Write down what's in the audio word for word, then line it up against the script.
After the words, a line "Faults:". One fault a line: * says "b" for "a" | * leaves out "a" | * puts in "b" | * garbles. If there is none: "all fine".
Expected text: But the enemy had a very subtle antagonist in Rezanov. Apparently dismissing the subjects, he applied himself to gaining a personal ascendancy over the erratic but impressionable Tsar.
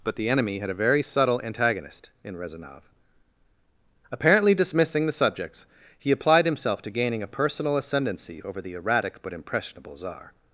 But the enemy had a very subtle antagonist in Rezanov. Apparently dismissing the subjects, he applied himself to gaining a personal ascendancy over the erratic but impressionable Tsar.
Faults:
all fine